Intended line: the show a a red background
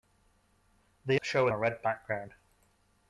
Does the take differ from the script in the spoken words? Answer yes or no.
no